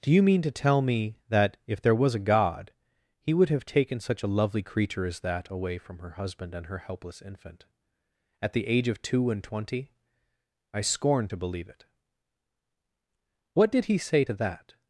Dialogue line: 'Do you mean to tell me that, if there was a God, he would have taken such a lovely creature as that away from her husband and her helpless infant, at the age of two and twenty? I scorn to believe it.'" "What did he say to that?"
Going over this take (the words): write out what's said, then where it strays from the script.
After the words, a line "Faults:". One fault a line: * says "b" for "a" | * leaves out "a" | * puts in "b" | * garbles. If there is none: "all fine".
'Do you mean to tell me that, if there was a God, he would have taken such a lovely creature as that away from her husband and her helpless infant, at the age of two and twenty? I scorn to believe it.'" "What did he say to that?"
Faults:
all fine